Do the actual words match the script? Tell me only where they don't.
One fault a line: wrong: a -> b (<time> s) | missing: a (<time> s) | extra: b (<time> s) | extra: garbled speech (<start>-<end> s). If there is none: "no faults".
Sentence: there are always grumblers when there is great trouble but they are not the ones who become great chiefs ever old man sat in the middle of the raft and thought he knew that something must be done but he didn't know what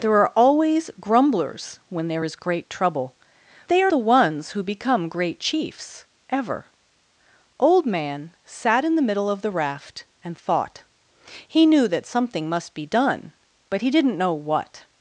missing: but (3.2 s)
missing: not (3.9 s)